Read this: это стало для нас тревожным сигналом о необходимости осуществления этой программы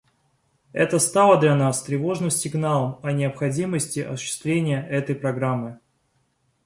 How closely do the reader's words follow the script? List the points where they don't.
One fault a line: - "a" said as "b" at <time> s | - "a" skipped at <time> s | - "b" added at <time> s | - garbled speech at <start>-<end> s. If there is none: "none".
none